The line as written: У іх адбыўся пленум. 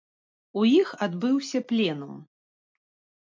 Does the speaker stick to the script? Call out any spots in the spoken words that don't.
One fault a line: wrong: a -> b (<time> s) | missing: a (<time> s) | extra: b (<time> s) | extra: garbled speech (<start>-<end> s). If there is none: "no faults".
no faults